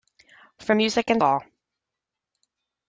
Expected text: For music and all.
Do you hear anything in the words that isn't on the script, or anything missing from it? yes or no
no